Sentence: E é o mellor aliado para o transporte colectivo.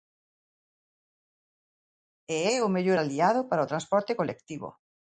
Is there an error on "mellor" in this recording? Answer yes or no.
no